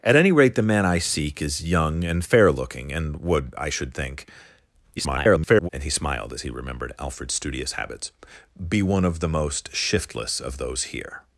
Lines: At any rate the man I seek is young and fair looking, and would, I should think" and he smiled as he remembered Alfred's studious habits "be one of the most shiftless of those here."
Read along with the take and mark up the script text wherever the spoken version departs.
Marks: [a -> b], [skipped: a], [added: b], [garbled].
At any rate the man I seek is young and fair looking, and would, I should think" [garbled] and he smiled as he remembered Alfred's studious habits "be one of the most shiftless of those here."